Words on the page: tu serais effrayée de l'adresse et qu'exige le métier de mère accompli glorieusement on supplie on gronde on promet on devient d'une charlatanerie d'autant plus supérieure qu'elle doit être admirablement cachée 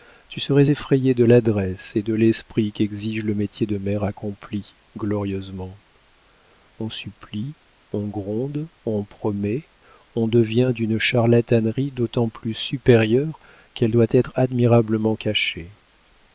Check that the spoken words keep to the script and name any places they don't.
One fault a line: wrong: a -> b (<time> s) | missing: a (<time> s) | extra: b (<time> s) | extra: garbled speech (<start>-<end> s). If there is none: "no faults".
extra: de l'esprit (2.0 s)